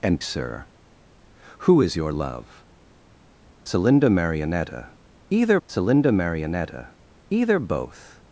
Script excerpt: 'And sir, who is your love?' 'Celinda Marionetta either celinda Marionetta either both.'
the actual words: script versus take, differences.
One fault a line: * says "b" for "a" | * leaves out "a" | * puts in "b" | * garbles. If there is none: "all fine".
all fine